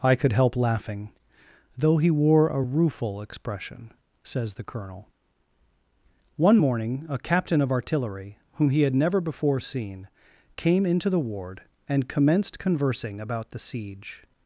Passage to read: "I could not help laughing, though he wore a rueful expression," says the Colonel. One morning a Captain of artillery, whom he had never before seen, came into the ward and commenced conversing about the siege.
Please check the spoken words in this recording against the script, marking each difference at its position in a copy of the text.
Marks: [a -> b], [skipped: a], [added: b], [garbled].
"I could [skipped: not] help laughing, though he wore a rueful expression," says the Colonel. One morning a Captain of artillery, whom he had never before seen, came into the ward and commenced conversing about the siege.